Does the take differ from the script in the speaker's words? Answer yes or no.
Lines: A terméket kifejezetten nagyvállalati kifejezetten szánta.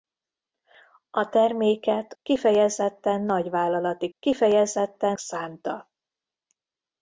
no